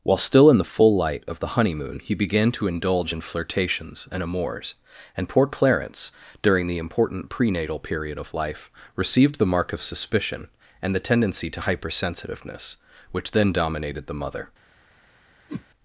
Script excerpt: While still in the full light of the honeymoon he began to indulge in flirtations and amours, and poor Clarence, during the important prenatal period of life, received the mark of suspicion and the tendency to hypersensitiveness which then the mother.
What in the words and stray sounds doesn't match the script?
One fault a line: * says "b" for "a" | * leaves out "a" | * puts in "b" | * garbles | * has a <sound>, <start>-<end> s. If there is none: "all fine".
* puts in "dominated"
* has a whoosh, 15.5-15.7 s